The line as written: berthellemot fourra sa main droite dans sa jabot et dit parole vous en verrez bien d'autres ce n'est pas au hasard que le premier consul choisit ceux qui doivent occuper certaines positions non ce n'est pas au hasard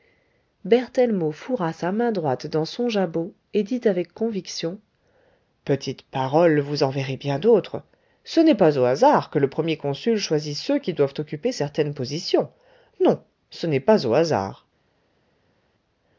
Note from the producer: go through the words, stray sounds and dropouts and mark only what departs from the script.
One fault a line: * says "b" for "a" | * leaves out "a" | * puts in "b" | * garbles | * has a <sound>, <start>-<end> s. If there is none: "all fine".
* says "son" for "sa"
* puts in "avec conviction petite"